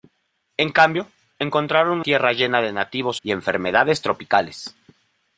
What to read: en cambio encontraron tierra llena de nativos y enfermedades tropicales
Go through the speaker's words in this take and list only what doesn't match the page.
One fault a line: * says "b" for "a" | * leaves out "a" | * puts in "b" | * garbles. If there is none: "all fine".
all fine